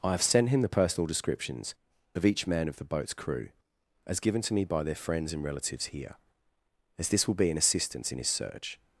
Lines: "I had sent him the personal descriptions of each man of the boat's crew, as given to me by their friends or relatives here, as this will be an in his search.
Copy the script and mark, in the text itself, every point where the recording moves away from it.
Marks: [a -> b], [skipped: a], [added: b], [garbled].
"I [had -> have] sent him the personal descriptions of each man of the boat's crew, as given to me by their friends [or -> and] relatives here, as this will be an [added: assistance] in his search.